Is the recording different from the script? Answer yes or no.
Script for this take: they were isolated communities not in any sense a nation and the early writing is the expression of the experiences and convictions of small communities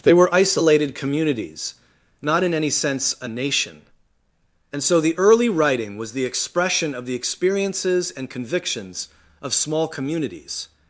yes